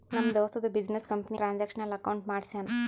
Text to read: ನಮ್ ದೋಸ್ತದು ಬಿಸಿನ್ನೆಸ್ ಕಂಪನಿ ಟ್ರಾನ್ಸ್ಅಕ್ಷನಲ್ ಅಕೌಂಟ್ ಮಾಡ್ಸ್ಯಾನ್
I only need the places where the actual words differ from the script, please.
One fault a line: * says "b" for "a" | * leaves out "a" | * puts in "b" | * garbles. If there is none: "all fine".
all fine